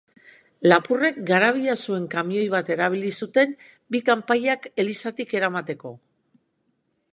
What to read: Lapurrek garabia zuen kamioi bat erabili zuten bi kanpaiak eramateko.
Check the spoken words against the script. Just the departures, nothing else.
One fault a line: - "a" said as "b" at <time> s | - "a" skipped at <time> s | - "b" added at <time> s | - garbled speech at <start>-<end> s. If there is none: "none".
- "elizatik" added at 4.9 s